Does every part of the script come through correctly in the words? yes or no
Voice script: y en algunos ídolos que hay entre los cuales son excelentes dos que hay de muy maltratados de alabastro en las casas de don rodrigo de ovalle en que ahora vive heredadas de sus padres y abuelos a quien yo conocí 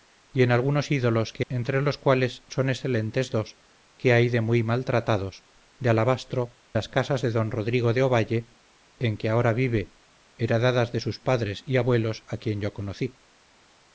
no